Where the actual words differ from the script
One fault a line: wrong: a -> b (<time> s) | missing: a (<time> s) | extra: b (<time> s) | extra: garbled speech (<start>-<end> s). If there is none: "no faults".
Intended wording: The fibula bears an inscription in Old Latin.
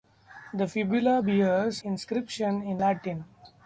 missing: an (1.8 s)
missing: Old (2.8 s)